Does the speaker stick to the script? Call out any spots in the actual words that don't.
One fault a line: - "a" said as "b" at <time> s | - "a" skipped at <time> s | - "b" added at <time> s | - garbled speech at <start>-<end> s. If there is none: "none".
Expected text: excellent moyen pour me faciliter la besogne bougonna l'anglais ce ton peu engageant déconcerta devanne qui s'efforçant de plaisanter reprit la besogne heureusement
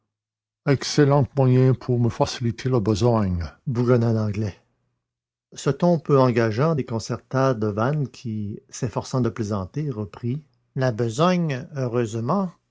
none